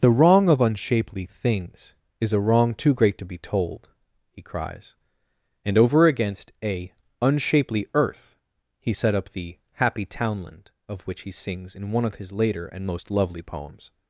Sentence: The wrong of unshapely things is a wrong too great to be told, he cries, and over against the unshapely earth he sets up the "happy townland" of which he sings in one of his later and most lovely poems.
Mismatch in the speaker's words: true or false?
true